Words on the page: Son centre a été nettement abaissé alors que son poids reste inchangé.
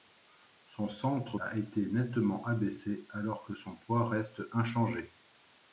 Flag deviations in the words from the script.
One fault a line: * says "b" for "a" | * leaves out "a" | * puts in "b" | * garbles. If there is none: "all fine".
all fine